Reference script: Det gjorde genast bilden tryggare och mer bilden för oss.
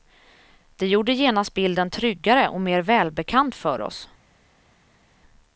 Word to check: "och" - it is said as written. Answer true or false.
true